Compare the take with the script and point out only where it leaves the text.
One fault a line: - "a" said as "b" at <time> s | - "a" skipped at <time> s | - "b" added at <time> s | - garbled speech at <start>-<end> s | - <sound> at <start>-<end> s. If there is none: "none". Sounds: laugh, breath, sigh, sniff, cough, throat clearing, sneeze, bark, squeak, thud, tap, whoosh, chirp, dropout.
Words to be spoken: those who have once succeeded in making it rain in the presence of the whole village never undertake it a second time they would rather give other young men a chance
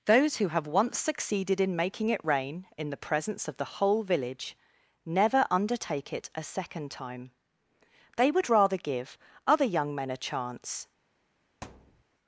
- thud at 11.6-12.0 s